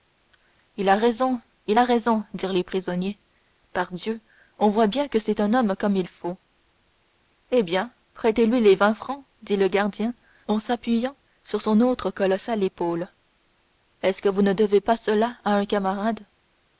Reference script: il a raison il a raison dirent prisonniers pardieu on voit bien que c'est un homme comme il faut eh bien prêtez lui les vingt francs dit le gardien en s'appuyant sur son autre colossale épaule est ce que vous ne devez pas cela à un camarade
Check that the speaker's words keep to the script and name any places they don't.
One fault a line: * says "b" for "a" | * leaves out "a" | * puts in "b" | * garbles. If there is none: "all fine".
* puts in "les"